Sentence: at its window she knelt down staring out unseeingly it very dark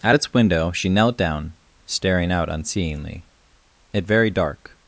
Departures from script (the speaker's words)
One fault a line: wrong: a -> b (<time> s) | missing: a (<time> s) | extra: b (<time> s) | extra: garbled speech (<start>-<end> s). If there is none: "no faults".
no faults